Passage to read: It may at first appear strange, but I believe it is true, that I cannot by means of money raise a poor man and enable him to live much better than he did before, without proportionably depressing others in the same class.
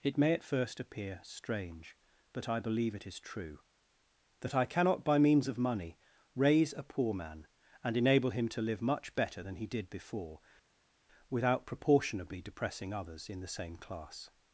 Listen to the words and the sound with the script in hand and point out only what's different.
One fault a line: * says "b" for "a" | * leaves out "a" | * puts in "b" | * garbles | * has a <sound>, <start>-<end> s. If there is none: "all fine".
all fine